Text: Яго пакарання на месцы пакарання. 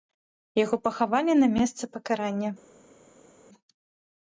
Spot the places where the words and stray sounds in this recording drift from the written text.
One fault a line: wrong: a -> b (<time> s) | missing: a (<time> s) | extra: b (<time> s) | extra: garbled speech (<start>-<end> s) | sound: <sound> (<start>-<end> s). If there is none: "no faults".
wrong: пакарання -> пахавалі (0.9 s)